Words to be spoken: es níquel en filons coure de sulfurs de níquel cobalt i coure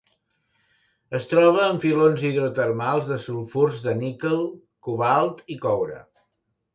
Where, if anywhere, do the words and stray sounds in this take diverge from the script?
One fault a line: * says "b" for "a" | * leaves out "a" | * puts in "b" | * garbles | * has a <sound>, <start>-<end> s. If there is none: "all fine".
* says "troba" for "níquel"
* says "hidrotermals" for "coure"